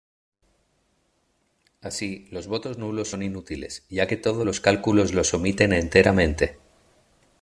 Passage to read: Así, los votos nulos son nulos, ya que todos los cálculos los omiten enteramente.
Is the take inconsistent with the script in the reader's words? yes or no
yes